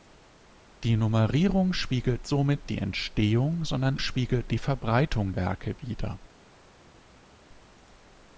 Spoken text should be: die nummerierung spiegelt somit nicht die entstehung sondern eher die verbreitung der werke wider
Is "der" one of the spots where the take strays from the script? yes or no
yes